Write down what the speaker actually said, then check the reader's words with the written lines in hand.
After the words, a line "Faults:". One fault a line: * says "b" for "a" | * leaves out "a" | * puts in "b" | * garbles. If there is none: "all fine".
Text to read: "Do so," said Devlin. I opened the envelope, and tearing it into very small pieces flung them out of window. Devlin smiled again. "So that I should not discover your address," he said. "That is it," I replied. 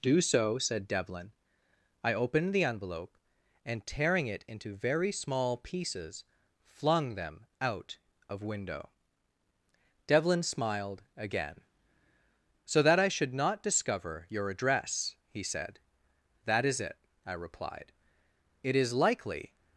"Do so," said Devlin. I opened the envelope, and tearing it into very small pieces flung them out of window. Devlin smiled again. "So that I should not discover your address," he said. "That is it," I replied. "It is likely
Faults:
* puts in "It is likely"